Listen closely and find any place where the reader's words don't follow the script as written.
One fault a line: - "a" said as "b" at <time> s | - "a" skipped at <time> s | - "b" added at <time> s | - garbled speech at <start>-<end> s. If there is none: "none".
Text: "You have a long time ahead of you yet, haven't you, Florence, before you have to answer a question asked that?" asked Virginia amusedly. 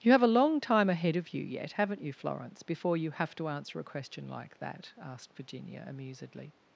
- "asked" said as "like" at 4.3 s